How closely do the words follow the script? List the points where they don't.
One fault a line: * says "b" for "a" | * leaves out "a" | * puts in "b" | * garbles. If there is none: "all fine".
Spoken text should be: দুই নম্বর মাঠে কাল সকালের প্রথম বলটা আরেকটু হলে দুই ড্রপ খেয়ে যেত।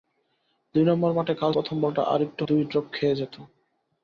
* leaves out "সকালের"
* leaves out "হলে"